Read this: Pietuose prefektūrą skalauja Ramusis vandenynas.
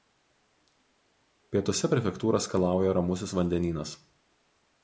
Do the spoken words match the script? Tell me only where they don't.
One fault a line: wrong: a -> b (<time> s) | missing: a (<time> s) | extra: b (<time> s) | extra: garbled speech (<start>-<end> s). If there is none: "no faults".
no faults